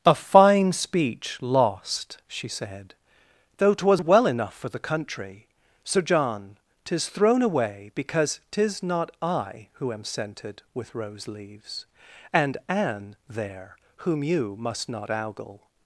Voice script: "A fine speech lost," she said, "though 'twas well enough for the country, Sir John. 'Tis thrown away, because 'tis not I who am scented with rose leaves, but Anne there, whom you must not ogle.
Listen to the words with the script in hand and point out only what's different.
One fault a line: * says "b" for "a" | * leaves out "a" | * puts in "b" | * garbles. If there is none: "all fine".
* says "and" for "but"